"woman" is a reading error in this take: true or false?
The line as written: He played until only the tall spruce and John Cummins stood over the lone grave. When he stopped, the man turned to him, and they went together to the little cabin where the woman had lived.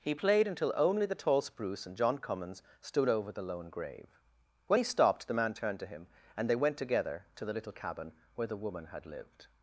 false